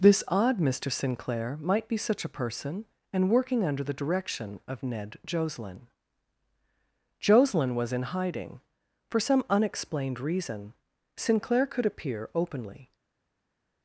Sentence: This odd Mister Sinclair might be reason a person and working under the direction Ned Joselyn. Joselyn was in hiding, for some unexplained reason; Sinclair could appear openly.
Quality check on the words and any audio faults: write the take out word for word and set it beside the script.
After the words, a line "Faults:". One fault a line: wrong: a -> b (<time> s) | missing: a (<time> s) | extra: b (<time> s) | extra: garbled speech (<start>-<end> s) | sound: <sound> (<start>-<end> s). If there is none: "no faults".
This odd Mister Sinclair might be such a person and working under the direction of Ned Joselyn. Joselyn was in hiding, for some unexplained reason; Sinclair could appear openly.
Faults:
wrong: reason -> such (1.9 s)
extra: of (4.7 s)